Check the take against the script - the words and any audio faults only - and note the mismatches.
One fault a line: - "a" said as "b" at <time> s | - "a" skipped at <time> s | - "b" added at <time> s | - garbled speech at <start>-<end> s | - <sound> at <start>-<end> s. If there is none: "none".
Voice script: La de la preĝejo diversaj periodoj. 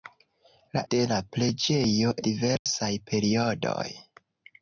- dropout at 2.6-2.7 s